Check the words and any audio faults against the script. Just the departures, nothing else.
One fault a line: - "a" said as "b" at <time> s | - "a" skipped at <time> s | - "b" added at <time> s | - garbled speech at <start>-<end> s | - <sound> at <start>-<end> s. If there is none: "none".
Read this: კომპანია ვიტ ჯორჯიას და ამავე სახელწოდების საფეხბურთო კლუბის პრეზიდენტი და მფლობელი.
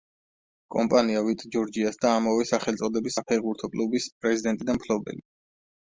none